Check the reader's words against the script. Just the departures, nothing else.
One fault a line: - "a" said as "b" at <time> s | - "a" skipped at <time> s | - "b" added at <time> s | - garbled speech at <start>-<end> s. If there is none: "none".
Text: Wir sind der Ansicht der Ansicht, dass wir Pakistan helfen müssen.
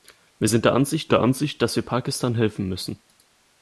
none